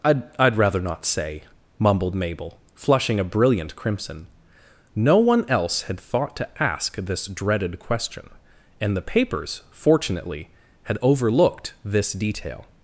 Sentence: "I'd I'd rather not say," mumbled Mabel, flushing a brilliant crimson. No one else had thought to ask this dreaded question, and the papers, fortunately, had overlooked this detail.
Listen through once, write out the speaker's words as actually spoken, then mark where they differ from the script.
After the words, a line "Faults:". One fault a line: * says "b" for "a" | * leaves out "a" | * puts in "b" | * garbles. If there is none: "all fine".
"I'd I'd rather not say," mumbled Mabel, flushing a brilliant crimson. No one else had thought to ask this dreaded question, and the papers, fortunately, had overlooked this detail.
Faults:
all fine